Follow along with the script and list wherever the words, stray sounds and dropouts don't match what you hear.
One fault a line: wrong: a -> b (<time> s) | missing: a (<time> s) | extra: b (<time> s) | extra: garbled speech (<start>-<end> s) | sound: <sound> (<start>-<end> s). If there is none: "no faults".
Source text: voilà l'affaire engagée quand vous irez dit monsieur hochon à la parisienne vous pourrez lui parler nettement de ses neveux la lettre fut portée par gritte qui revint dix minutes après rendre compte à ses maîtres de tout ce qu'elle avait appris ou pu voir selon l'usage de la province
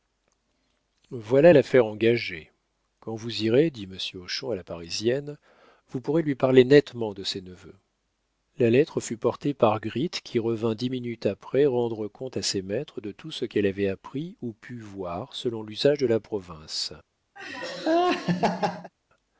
sound: laugh (17.4-18.9 s)